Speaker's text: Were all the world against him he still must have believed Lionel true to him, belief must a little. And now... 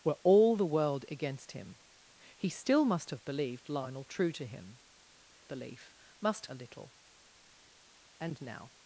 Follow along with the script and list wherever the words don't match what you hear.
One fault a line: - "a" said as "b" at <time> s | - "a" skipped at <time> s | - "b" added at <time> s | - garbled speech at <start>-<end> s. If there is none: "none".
none